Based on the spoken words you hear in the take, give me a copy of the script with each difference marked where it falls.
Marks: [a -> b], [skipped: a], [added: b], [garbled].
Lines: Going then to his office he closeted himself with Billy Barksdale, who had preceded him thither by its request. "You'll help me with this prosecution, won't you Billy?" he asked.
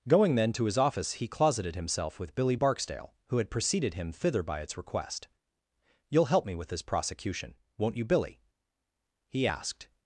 Going then to his office he closeted himself with Billy Barksdale, who had preceded him thither by its request. "You'll help me with this prosecution, won't you Billy?" he asked.